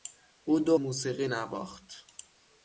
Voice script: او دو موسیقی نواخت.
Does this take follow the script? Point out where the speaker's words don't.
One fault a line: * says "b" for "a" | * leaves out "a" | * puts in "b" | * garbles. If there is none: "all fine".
all fine